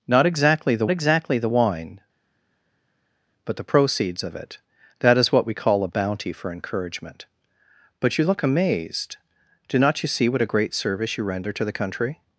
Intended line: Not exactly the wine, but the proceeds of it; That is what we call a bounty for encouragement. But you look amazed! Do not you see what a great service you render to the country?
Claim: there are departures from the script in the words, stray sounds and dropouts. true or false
true